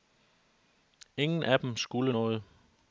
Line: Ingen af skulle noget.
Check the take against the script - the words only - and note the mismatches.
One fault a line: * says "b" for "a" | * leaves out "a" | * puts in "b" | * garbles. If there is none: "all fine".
* puts in "dem"